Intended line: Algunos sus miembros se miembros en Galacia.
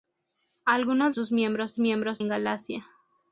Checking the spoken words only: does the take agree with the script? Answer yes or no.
yes